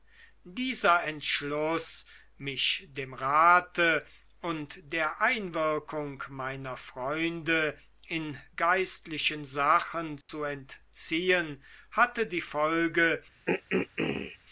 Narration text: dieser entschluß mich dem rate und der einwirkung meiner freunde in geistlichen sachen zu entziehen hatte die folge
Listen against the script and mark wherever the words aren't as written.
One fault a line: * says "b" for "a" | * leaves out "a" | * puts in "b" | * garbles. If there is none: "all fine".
all fine